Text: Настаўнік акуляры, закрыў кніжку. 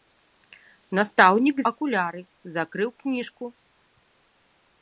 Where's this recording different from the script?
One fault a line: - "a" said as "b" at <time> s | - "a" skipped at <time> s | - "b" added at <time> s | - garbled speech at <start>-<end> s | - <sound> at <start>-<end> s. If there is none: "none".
none